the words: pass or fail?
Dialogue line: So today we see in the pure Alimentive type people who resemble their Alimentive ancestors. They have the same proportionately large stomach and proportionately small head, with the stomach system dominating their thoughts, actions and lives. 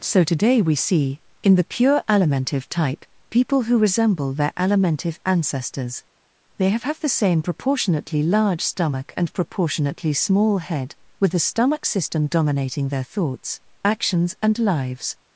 fail